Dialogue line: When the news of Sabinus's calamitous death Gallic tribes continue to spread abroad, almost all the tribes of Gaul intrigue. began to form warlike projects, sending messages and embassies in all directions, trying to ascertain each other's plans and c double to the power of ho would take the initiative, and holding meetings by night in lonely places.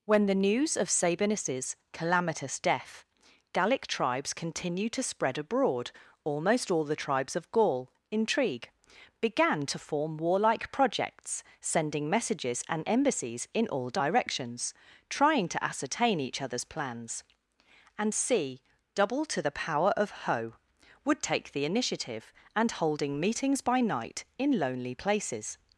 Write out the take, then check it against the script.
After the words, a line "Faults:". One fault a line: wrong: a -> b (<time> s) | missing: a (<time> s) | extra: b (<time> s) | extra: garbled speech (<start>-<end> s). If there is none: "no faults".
When the news of Sabinus's calamitous death Gallic tribes continue to spread abroad, almost all the tribes of Gaul intrigue. began to form warlike projects, sending messages and embassies in all directions, trying to ascertain each other's plans and c double to the power of ho would take the initiative, and holding meetings by night in lonely places.
Faults:
no faults